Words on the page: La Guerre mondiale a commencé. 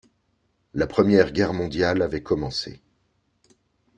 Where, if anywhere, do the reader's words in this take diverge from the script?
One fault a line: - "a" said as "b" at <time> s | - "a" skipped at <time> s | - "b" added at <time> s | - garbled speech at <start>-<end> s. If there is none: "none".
- "Première" added at 0.9 s
- "a" said as "avait" at 2.0 s